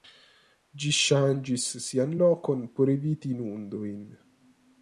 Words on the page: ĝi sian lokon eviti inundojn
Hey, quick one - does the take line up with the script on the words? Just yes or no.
no